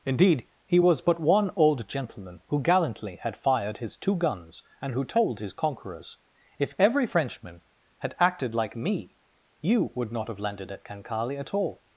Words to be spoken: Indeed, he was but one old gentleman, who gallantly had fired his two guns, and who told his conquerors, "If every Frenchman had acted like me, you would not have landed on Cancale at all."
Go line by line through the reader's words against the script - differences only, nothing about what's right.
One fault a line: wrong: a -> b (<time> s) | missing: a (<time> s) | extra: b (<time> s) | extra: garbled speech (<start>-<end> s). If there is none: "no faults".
wrong: on -> at (10.7 s)